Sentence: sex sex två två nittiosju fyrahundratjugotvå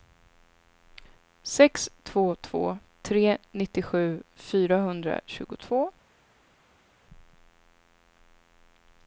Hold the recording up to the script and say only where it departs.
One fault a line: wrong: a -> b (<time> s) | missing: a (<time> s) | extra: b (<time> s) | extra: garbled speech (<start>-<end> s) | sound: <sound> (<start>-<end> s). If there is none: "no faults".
wrong: sex -> två (2.0 s)
wrong: två -> tre (3.0 s)